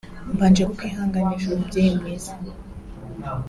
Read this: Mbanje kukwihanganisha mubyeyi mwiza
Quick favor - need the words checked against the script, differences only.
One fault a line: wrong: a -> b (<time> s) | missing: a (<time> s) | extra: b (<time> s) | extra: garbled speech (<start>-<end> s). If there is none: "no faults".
no faults